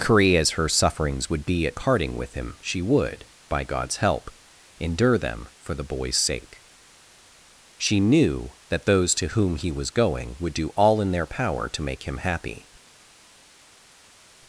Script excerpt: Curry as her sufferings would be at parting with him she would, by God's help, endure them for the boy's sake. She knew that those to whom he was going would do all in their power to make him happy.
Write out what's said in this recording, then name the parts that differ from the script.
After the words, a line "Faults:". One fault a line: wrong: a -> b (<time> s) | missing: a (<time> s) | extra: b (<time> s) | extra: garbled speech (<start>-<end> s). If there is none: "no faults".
Curry as her sufferings would be at parting with him she would, by God's help, endure them for the boy's sake. She knew that those to whom he was going would do all in their power to make him happy.
Faults:
no faults